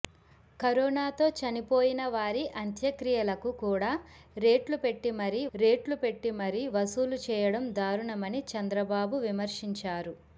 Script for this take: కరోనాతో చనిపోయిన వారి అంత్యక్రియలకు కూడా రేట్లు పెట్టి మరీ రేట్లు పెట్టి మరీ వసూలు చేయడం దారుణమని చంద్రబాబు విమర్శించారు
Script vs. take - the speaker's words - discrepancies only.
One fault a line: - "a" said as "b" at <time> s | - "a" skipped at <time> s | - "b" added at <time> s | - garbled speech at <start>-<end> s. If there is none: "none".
none